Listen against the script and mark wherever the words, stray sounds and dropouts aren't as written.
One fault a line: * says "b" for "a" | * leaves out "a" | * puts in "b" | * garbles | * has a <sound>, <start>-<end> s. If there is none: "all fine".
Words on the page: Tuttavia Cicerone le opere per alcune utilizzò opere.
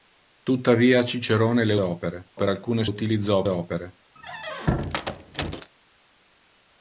* has a squeak, 4.2-5.7 s